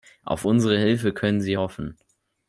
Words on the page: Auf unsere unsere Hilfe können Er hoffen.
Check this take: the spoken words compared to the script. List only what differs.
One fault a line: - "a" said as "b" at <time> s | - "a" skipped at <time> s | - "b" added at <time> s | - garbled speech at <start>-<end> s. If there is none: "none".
- "unsere" skipped at 0.8 s
- "Er" said as "Sie" at 1.4 s